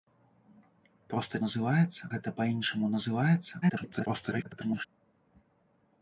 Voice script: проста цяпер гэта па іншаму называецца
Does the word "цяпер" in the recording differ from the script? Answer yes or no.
yes